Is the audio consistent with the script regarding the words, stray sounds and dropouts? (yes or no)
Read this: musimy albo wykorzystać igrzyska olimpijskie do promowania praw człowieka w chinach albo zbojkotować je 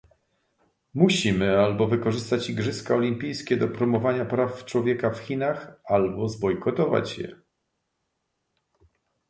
yes